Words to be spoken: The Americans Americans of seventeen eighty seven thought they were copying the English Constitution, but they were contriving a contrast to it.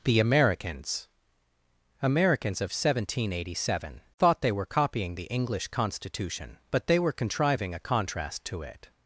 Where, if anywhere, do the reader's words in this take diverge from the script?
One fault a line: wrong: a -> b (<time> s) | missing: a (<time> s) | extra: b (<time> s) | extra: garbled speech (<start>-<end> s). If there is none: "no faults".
no faults